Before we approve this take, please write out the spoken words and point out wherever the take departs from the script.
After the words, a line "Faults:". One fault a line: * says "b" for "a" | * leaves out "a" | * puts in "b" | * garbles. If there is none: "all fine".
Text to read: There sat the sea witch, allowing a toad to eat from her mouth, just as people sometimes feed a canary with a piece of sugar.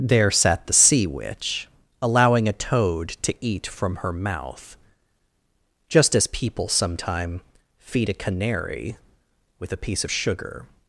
There sat the sea witch, allowing a toad to eat from her mouth, just as people sometime feed a canary with a piece of sugar.
Faults:
* says "sometime" for "sometimes"